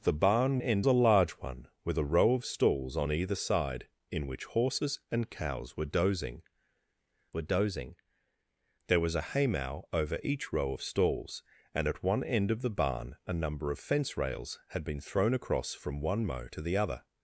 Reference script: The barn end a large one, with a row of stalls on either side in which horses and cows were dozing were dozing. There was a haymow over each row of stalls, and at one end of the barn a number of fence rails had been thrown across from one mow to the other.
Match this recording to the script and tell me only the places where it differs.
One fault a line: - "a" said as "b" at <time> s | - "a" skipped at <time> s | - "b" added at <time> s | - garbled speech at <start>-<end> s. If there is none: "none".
none